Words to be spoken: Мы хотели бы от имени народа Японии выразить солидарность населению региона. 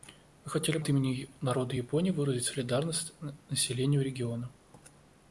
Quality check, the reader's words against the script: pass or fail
fail